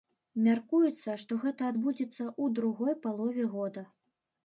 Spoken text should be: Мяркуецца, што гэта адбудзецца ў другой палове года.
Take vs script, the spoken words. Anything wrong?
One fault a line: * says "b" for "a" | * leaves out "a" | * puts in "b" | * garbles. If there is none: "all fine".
all fine